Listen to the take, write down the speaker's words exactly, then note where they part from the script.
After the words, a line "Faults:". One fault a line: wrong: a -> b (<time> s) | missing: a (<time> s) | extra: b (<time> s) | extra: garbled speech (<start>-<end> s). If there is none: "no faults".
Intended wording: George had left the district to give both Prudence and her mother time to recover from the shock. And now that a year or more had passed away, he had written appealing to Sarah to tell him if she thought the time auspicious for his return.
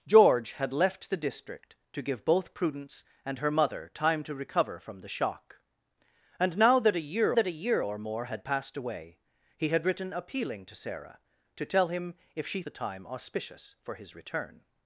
George had left the district to give both Prudence and her mother time to recover from the shock. And now that a year that a year or more had passed away, he had written appealing to Sarah to tell him if she the time auspicious for his return.
Faults:
extra: that a year (7.3 s)
missing: thought (12.6 s)